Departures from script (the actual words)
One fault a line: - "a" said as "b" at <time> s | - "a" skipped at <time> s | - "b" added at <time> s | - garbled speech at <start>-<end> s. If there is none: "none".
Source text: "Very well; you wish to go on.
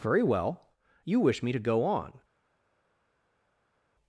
- "me" added at 1.4 s